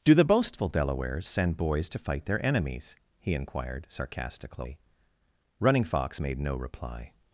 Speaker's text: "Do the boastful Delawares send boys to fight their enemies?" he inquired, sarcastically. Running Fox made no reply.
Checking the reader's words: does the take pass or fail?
pass